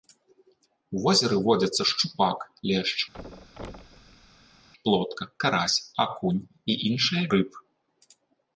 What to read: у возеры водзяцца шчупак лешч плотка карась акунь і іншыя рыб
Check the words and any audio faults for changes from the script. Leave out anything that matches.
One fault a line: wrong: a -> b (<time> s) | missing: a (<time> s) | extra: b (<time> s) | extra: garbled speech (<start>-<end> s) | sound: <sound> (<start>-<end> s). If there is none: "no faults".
sound: thud (3.1-4.7 s)